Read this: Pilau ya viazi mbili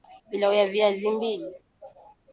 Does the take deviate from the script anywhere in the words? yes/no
no